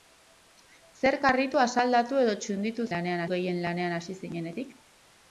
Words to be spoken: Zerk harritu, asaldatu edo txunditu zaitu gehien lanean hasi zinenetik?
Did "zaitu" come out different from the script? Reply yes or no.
yes